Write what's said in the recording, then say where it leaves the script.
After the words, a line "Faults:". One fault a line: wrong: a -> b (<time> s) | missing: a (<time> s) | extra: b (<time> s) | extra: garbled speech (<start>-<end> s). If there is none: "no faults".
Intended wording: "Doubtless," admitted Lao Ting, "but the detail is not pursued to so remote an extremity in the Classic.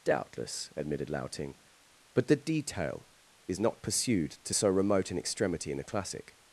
"Doubtless," admitted Lao Ting, "but the detail is not pursued to so remote an extremity in the Classic.
Faults:
no faults